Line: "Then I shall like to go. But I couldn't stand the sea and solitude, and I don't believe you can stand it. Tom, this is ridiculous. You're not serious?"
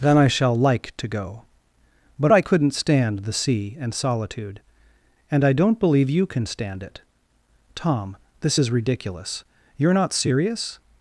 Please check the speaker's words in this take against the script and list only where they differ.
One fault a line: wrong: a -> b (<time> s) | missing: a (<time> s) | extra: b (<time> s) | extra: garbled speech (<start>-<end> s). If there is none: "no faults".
no faults